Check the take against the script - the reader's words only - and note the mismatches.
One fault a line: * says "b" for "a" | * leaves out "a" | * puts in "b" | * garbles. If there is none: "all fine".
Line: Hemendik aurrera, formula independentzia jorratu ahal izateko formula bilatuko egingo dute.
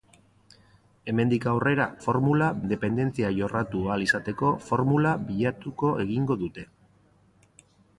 all fine